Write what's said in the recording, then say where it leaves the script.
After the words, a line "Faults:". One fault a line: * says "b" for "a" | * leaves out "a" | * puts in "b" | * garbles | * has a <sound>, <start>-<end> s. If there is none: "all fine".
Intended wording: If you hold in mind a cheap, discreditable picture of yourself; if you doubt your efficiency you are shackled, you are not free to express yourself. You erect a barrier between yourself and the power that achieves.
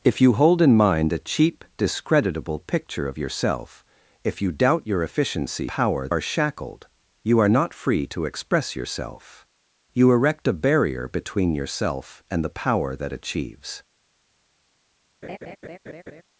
If you hold in mind a cheap, discreditable picture of yourself; if you doubt your efficiency power are shackled, you are not free to express yourself. You erect a barrier between yourself and the power that achieves.
Faults:
* says "power" for "you"
* has a laugh, 15.2-16.2 s